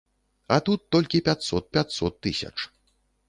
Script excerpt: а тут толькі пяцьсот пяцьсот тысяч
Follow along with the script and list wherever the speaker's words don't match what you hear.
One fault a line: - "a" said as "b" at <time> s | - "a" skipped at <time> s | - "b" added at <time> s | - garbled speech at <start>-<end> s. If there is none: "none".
none